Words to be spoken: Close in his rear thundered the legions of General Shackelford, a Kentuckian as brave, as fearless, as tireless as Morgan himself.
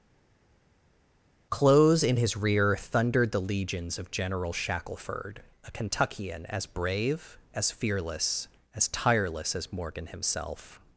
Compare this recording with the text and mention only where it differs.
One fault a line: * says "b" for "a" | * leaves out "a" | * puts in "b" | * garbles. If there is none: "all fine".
all fine